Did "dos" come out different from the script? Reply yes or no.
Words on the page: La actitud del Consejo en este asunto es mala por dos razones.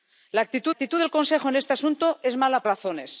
yes